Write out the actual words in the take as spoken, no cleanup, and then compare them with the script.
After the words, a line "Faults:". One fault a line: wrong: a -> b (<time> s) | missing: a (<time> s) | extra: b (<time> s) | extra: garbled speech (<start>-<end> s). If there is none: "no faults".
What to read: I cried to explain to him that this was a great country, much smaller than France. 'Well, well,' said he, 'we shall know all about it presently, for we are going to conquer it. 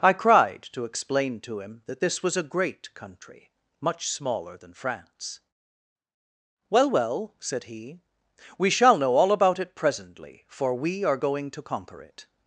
I cried to explain to him that this was a great country, much smaller than France. 'Well, well,' said he, 'we shall know all about it presently, for we are going to conquer it.
Faults:
no faults